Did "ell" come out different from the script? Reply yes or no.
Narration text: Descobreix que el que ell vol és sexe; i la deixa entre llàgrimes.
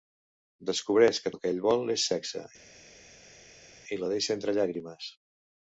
no